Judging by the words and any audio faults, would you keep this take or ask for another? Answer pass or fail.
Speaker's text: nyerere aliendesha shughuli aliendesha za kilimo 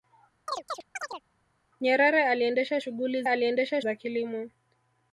fail